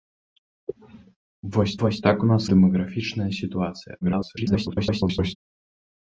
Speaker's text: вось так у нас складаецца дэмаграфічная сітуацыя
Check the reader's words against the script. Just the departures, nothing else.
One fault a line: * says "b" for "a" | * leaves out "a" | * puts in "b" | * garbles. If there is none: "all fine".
* puts in "вось"
* leaves out "складаецца"
* garbles